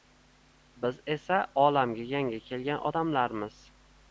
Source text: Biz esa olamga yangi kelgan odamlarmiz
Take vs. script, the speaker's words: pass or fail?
pass